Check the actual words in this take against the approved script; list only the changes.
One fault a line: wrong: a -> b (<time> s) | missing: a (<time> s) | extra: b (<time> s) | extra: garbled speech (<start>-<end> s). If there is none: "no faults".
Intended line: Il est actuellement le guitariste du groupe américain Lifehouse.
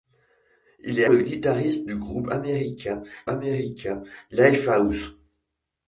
missing: actuellement (1.1 s)
extra: américain (3.3 s)